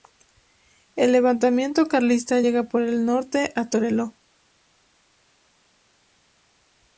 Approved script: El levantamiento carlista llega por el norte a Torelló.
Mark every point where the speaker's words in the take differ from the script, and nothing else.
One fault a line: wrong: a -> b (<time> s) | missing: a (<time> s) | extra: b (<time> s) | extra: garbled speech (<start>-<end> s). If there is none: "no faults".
no faults